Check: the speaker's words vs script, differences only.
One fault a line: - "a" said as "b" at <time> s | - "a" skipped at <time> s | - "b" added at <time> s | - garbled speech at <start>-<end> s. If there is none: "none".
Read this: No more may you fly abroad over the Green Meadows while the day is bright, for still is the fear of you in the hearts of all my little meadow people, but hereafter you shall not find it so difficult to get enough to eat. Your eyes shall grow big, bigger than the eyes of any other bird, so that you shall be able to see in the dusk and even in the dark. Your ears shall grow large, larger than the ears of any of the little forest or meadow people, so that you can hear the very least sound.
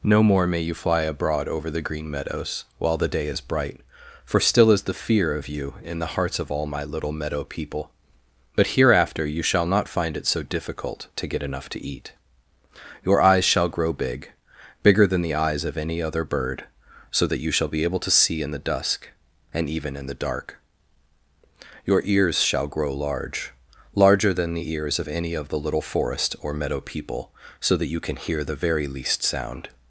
none